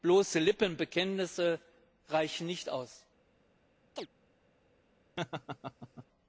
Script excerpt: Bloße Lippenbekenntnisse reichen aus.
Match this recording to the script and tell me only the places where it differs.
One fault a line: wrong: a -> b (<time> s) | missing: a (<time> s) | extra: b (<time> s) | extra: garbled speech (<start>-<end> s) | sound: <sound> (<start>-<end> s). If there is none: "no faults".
extra: nicht (2.5 s)
sound: chirp (4.0-4.1 s)
sound: laugh (5.2-6.1 s)